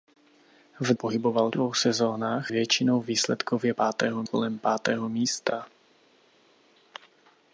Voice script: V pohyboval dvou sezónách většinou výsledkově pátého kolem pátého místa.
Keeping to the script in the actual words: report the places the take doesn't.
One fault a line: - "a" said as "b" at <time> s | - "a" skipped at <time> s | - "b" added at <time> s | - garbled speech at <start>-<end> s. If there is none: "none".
none